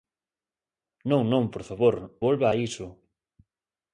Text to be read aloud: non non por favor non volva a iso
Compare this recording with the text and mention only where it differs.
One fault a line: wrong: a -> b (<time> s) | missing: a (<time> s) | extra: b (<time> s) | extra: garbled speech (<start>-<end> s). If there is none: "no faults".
missing: non (1.9 s)